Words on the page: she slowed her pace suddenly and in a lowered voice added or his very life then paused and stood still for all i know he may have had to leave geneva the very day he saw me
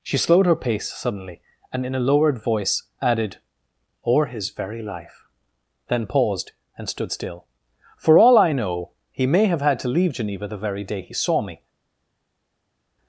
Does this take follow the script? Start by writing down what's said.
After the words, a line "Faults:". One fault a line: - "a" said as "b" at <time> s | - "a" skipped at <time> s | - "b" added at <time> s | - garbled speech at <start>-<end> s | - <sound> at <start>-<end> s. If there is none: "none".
she slowed her pace suddenly and in a lowered voice added or his very life then paused and stood still for all i know he may have had to leave geneva the very day he saw me
Faults:
none